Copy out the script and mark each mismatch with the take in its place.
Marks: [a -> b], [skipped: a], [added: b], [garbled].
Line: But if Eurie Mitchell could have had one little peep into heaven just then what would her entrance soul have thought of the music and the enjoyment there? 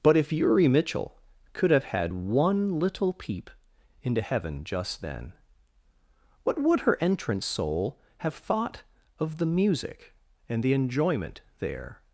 But if Eurie Mitchell could have had one little peep into heaven just then what would her entrance soul have thought of the music and the enjoyment there?